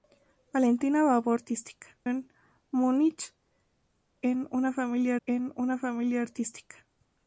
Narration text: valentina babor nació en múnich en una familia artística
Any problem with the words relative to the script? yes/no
yes